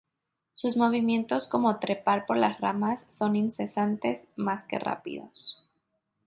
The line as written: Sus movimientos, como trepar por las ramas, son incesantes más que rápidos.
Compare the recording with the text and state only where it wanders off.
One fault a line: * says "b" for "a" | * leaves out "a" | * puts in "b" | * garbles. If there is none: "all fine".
all fine